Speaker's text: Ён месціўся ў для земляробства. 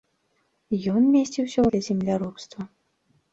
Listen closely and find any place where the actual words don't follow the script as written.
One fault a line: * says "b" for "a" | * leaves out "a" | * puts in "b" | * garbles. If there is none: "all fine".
all fine